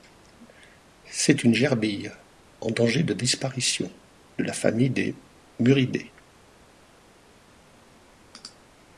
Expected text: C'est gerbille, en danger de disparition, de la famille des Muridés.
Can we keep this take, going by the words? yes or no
no